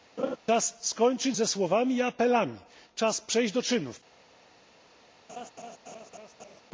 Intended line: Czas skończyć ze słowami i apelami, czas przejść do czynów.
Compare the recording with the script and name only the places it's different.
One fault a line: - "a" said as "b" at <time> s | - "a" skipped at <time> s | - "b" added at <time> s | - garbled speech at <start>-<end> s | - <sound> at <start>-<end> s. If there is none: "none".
- laugh at 0.2-0.4 s
- laugh at 5.3-6.6 s